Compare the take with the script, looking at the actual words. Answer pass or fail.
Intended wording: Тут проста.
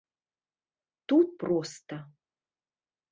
pass